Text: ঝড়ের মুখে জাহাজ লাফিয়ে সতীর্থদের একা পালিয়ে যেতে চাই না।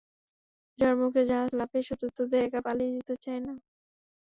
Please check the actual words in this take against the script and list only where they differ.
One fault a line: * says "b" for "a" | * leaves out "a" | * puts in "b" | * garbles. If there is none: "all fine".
all fine